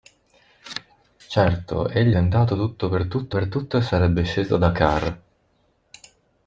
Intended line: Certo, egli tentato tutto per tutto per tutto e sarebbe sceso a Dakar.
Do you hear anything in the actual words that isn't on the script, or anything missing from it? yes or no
no